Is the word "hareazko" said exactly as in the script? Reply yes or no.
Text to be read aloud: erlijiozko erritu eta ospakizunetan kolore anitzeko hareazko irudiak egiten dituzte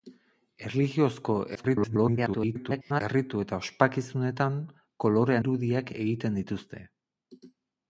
no